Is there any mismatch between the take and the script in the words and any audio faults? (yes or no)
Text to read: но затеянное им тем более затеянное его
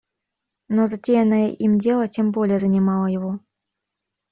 yes